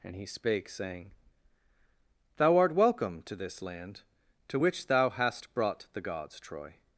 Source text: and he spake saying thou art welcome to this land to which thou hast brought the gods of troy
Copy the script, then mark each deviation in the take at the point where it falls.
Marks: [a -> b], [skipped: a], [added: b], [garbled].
and he spake saying thou art welcome to this land to which thou hast brought the gods [skipped: of] troy